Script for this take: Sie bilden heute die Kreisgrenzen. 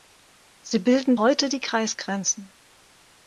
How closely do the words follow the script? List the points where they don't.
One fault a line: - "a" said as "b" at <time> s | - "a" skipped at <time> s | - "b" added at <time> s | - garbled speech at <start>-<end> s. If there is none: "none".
none